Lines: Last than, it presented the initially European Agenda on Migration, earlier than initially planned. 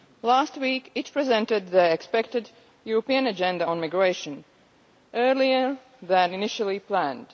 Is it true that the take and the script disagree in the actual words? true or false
true